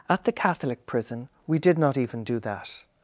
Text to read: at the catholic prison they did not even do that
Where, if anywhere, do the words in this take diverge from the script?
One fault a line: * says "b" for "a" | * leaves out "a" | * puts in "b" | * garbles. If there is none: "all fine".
* says "we" for "they"